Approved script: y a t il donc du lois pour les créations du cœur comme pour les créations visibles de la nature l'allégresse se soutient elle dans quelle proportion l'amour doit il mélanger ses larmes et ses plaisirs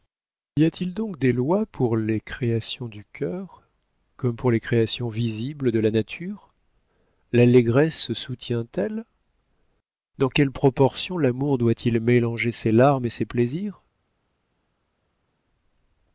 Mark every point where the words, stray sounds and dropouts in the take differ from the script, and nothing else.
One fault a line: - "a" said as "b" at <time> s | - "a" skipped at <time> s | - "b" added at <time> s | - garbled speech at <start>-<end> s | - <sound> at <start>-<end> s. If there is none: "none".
- "du" said as "des" at 1.2 s